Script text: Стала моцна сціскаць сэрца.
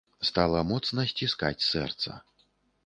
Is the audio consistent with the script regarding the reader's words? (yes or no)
yes